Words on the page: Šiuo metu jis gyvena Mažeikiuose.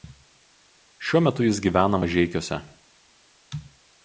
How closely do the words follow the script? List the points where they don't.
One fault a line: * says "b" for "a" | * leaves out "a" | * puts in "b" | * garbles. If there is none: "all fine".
all fine